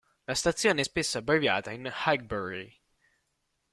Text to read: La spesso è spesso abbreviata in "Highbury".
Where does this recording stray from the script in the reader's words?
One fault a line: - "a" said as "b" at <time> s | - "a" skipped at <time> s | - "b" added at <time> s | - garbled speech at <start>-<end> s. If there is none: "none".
- "spesso" said as "stazione" at 0.3 s